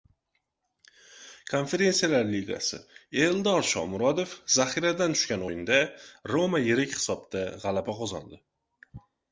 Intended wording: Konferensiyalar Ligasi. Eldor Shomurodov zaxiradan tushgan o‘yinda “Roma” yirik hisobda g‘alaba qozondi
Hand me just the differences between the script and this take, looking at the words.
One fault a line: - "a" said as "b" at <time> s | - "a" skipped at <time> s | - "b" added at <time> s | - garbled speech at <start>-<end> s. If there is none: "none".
none